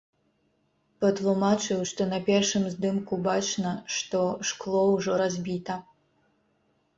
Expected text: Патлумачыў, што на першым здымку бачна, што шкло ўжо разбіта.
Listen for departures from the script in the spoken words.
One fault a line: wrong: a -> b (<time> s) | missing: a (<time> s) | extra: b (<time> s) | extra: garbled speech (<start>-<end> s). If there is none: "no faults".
no faults